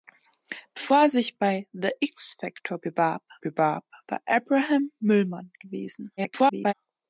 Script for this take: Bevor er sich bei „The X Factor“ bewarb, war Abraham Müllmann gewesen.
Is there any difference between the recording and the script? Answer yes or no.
yes